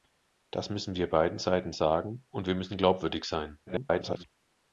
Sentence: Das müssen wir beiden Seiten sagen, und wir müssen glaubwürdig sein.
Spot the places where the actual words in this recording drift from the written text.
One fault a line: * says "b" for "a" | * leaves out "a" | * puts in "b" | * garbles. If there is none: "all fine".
* garbles